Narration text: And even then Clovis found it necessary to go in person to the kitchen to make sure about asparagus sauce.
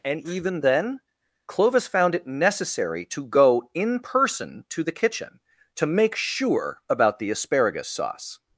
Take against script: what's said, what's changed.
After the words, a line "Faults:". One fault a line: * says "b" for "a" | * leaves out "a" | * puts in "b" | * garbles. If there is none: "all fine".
And even then Clovis found it necessary to go in person to the kitchen to make sure about the asparagus sauce.
Faults:
* puts in "the"